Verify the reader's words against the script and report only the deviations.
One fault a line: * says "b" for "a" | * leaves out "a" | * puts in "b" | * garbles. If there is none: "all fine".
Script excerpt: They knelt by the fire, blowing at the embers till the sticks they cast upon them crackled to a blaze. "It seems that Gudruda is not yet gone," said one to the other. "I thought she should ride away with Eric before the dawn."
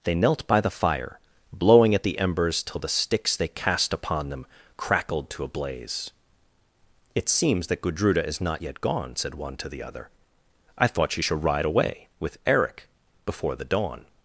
all fine